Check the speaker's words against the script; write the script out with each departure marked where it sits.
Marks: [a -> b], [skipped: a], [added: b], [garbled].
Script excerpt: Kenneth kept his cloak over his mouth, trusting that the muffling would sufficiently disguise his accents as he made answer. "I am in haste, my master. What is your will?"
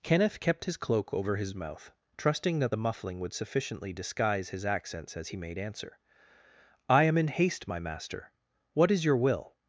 Kenneth kept his cloak over his mouth, trusting that the muffling would sufficiently disguise his accents as he made answer. "I am in haste, my master. What is your will?"